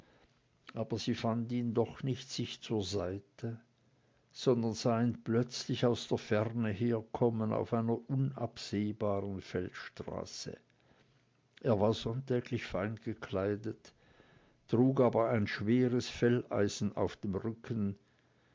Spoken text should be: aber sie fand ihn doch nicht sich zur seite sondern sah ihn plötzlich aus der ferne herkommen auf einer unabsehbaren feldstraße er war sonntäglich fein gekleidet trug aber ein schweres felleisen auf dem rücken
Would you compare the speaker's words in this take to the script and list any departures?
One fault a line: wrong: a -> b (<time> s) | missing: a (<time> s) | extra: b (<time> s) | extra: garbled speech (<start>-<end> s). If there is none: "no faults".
no faults